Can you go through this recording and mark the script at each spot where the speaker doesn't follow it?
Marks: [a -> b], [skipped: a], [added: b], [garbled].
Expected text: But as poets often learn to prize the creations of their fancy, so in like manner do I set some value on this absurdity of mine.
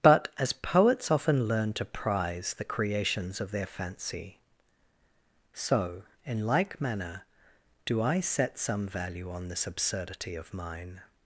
But as poets often learn to prize the creations of their fancy, so in like manner do I set some value on this absurdity of mine.